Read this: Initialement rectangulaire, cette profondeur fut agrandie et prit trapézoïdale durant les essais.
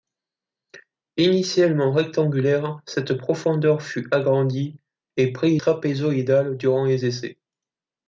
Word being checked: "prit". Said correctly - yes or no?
yes